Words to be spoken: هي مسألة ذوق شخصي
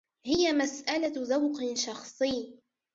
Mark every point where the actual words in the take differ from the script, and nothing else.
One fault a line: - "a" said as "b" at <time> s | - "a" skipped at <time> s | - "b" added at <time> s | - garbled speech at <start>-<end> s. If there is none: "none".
none